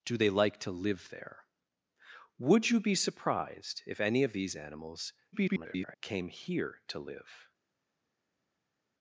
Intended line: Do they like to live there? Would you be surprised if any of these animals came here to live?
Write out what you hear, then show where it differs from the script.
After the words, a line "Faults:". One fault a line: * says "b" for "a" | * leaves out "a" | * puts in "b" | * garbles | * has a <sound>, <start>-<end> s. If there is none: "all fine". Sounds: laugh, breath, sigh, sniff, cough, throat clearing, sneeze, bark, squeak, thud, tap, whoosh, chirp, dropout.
Do they like to live there? Would you be surprised if any of these animals [garbled] came here to live?
Faults:
* garbles